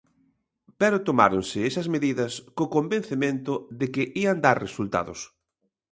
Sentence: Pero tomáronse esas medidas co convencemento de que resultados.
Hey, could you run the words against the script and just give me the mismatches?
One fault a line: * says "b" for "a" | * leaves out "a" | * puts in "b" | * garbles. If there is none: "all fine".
* puts in "ían dar"